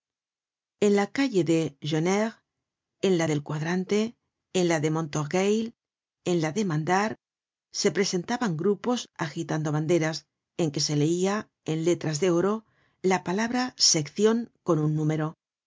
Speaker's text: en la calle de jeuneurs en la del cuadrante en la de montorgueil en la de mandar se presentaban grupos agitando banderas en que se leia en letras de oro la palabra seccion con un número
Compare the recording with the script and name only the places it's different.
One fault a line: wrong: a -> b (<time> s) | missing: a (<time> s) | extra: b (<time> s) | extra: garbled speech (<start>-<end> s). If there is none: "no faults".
no faults